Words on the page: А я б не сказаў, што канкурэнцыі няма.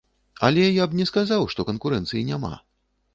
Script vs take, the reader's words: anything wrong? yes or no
yes